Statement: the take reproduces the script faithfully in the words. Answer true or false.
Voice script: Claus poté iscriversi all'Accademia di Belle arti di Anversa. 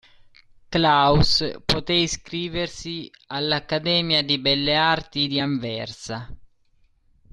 true